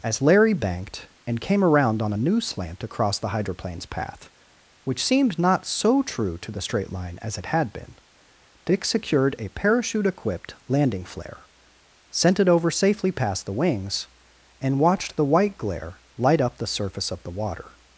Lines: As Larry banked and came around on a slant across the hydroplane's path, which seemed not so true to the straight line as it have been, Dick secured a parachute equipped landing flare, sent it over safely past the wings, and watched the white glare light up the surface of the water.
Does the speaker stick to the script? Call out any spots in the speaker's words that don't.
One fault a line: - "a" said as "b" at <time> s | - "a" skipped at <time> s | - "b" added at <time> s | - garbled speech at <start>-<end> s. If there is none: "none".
- "new" added at 2.2 s
- "have" said as "had" at 7.5 s